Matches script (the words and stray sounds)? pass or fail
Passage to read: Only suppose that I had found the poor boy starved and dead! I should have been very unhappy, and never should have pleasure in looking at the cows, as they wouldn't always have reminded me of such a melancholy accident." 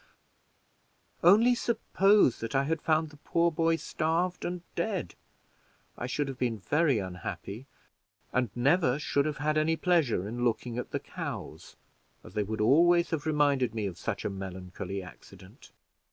fail